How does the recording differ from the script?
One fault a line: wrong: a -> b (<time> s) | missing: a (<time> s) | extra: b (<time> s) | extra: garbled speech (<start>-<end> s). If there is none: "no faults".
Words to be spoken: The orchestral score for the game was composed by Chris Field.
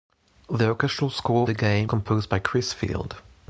missing: for (1.5 s)
missing: was (1.9 s)